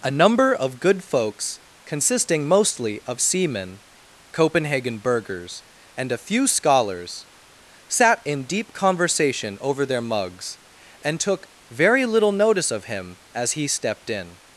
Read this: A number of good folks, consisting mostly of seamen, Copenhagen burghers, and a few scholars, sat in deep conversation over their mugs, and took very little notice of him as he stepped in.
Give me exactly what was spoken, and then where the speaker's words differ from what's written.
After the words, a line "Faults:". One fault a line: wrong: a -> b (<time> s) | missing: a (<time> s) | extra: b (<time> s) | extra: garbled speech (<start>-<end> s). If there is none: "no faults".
A number of good folks, consisting mostly of seamen, Copenhagen burghers, and a few scholars, sat in deep conversation over their mugs, and took very little notice of him as he stepped in.
Faults:
no faults